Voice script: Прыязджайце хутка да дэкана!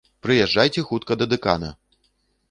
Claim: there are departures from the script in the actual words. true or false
false